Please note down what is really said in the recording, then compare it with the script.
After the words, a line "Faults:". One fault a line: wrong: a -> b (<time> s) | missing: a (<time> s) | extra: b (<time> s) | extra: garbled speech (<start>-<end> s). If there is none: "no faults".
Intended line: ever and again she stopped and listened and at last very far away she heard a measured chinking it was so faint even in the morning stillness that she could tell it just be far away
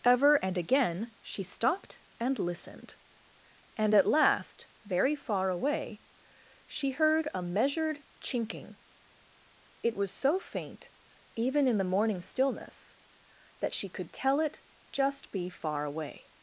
ever and again she stopped and listened and at last very far away she heard a measured chinking it was so faint even in the morning stillness that she could tell it just be far away
Faults:
no faults